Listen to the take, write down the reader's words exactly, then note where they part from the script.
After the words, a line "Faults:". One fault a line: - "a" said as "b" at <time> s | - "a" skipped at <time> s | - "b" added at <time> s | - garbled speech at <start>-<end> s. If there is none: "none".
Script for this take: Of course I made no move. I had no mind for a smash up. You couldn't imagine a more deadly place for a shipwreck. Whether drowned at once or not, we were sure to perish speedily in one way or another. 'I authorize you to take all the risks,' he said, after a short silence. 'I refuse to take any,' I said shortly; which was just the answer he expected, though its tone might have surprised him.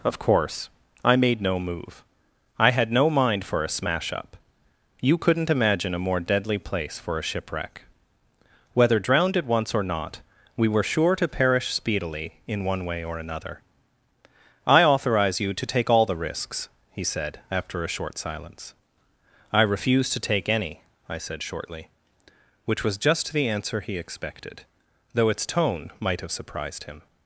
Of course I made no move. I had no mind for a smash up. You couldn't imagine a more deadly place for a shipwreck. Whether drowned at once or not, we were sure to perish speedily in one way or another. 'I authorize you to take all the risks,' he said, after a short silence. 'I refuse to take any,' I said shortly; which was just the answer he expected, though its tone might have surprised him.
Faults:
none